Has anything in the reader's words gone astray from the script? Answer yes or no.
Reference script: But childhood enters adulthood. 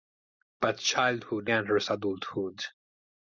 no